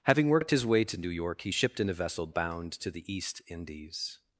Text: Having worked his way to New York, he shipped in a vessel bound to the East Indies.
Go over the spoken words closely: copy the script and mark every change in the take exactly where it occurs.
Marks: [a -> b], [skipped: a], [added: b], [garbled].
Having worked his way to New York, he shipped in a vessel bound to the East Indies.